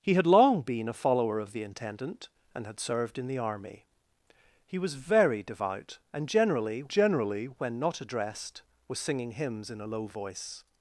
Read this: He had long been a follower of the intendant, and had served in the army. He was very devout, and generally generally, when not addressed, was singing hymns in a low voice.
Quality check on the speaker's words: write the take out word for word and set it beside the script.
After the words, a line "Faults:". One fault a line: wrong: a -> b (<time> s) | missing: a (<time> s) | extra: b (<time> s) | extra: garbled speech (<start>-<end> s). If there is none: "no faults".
He had long been a follower of the intendant, and had served in the army. He was very devout, and generally generally, when not addressed, was singing hymns in a low voice.
Faults:
no faults